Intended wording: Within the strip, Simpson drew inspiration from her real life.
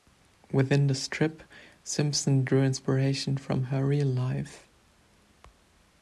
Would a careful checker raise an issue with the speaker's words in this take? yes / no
no